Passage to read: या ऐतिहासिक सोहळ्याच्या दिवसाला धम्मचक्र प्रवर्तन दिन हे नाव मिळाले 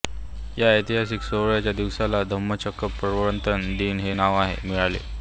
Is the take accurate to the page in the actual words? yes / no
yes